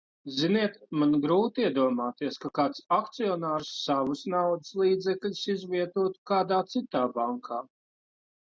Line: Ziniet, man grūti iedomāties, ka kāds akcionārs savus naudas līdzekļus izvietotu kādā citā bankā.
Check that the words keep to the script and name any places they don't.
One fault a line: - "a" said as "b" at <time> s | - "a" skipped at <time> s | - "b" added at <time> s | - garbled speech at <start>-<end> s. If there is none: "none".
none